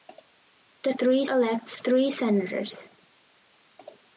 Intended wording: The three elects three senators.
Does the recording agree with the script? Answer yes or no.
yes